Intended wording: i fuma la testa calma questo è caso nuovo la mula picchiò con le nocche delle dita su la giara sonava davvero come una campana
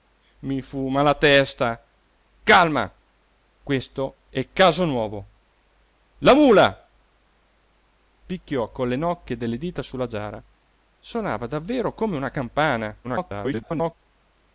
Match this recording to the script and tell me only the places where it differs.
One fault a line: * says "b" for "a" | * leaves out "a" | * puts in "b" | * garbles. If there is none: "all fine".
* garbles